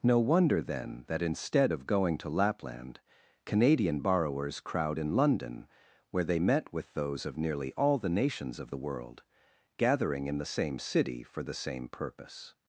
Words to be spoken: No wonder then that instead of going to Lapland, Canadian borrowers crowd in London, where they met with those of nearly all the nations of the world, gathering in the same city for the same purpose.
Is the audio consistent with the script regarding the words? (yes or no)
yes